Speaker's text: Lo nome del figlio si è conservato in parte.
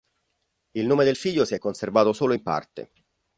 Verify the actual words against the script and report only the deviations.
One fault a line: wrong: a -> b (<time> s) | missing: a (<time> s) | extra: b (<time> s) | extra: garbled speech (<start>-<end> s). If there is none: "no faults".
wrong: Lo -> Il (0.7 s)
extra: solo (2.1 s)